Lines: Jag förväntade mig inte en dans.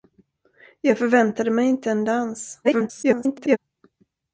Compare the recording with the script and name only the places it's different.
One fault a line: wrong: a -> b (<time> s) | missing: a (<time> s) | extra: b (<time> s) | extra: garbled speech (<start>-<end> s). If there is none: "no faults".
extra: garbled speech (2.6-3.6 s)